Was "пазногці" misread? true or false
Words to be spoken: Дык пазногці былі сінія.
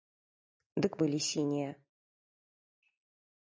true